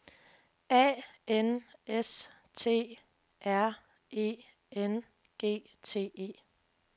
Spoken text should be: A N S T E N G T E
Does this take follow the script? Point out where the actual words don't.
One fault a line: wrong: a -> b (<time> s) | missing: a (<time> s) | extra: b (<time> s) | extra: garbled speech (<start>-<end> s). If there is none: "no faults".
extra: R (3.5 s)